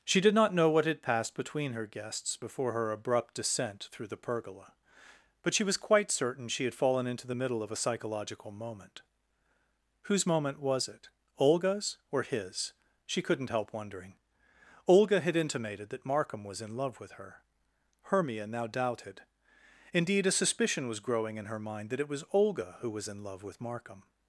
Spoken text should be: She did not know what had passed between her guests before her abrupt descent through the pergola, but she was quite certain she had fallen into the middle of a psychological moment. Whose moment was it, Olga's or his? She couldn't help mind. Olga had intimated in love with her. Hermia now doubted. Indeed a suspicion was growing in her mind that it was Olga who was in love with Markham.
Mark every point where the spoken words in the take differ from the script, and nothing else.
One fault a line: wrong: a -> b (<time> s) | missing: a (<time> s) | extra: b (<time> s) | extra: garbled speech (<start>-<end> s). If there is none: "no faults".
wrong: mind -> wondering (13.7 s)
extra: that Markham was (15.9 s)